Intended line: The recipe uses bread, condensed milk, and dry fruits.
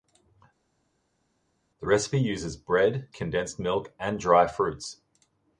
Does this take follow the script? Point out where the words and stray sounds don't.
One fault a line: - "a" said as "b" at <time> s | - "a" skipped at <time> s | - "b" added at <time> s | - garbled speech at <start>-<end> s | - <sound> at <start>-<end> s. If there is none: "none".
none